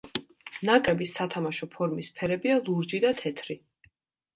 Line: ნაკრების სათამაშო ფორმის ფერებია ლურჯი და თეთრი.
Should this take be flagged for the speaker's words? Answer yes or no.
no